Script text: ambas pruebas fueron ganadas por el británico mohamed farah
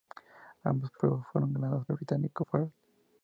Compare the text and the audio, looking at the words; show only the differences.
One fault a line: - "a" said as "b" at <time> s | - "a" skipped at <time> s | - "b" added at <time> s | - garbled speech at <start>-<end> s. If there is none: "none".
- "por" skipped at 1.9 s
- "mohamed" skipped at 2.5 s